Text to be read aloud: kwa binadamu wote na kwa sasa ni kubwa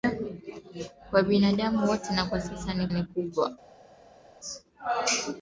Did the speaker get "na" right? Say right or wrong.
right